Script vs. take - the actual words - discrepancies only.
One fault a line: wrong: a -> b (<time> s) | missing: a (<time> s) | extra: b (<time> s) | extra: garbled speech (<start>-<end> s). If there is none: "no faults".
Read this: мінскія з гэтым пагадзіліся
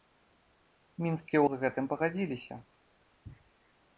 no faults